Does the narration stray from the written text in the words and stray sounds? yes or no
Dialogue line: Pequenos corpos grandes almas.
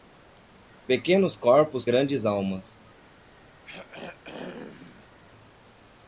yes